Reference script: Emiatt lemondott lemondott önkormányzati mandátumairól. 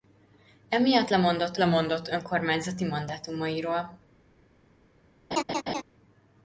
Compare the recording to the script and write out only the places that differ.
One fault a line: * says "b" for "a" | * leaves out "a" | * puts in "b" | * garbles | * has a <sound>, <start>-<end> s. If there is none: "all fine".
* has a laugh, 5.3-5.8 s